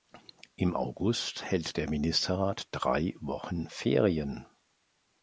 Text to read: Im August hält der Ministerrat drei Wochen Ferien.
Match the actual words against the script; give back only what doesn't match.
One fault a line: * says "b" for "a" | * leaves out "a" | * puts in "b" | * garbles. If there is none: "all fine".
all fine